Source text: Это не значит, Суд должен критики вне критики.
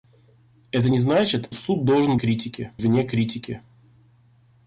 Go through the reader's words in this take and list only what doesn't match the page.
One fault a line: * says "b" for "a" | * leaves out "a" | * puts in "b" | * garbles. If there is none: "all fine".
all fine